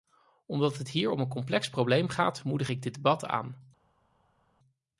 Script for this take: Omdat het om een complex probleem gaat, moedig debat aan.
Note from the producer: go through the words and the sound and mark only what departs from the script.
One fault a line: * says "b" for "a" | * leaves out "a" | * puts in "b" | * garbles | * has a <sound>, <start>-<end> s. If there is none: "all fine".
* puts in "hier"
* puts in "ik dit"